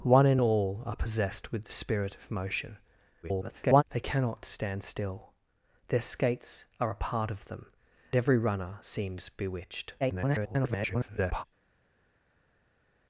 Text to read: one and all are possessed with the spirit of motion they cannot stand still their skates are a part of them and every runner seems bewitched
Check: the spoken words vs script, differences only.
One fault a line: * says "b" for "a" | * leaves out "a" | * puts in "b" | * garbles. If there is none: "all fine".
* garbles
* leaves out "and"
* garbles